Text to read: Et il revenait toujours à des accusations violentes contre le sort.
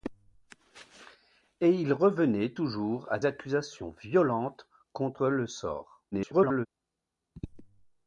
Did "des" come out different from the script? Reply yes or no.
yes